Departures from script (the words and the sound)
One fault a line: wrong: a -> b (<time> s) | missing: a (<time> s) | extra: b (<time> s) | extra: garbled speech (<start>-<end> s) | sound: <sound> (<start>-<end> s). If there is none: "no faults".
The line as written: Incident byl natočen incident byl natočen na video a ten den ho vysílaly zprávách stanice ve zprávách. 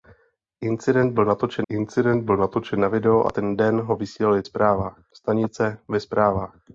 no faults